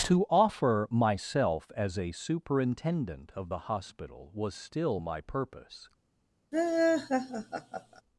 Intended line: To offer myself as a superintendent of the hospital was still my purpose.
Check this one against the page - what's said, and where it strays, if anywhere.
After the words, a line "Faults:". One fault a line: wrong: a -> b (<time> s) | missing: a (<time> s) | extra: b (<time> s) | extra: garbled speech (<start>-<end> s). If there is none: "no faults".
To offer myself as a superintendent of the hospital was still my purpose.
Faults:
no faults